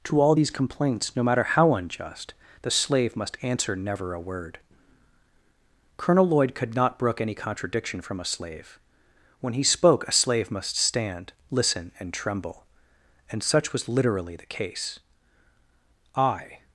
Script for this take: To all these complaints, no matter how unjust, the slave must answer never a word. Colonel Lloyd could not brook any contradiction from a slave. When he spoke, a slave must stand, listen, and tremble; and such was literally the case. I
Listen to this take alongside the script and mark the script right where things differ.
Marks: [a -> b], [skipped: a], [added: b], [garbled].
To all these complaints, no matter how unjust, the slave must answer never a word. Colonel Lloyd could not brook any contradiction from a slave. When he spoke, a slave must stand, listen, and tremble; and such was literally the case. I